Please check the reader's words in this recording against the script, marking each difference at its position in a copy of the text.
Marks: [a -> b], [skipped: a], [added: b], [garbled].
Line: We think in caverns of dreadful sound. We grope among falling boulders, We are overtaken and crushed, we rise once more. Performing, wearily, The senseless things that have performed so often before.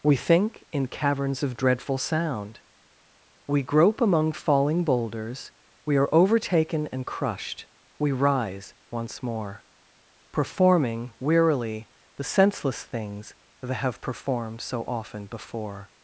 We think in caverns of dreadful sound. We grope among falling boulders, We are overtaken and crushed, we rise once more. Performing, wearily, The senseless things that have performed so often before.